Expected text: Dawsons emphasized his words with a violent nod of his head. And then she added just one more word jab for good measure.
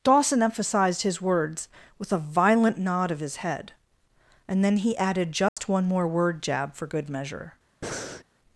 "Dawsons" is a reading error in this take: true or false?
true